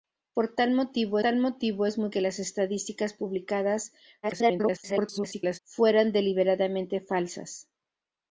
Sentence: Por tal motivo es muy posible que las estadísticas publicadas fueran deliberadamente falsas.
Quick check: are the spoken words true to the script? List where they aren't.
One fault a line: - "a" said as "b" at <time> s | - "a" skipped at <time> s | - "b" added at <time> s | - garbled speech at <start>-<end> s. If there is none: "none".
- "tal motivo" added at 1.2 s
- "posible" skipped at 2.1 s
- garbled speech at 4.2-5.6 s